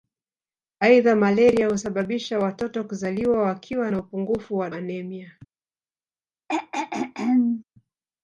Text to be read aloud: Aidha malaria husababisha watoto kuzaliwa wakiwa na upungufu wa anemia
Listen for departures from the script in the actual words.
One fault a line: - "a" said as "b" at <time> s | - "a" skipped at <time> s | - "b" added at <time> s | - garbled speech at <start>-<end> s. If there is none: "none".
none